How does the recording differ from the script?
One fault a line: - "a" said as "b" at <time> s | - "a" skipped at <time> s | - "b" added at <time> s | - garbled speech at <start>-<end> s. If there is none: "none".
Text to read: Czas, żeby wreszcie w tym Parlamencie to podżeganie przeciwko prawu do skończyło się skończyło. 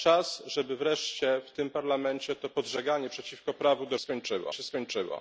none